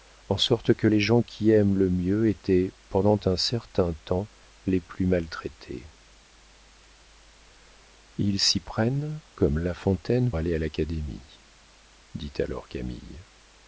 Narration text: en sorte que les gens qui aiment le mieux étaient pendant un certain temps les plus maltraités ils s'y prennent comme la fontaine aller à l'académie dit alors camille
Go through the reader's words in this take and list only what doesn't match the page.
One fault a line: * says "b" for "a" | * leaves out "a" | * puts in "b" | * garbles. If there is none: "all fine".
all fine